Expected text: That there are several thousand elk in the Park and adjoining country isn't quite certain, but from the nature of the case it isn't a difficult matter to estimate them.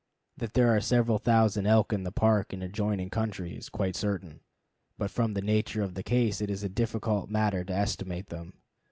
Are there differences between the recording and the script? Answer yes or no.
yes